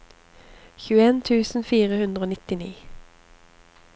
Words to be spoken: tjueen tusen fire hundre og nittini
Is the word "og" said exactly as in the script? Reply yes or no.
yes